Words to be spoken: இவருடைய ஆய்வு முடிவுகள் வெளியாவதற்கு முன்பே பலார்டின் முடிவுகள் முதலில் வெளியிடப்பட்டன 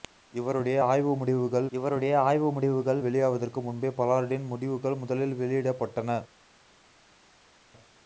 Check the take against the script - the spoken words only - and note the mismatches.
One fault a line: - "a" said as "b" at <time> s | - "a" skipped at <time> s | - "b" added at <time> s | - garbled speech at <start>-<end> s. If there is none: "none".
- "இவருடைய ஆய்வு முடிவுகள்" added at 1.7 s